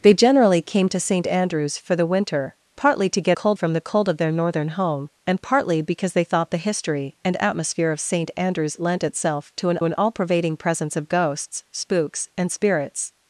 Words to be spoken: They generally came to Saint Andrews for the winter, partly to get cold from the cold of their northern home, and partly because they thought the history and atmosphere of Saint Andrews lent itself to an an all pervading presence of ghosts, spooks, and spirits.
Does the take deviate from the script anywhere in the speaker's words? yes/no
no